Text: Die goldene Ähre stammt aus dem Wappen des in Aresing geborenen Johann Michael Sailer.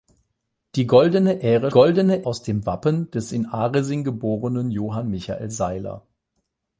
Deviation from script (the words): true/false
true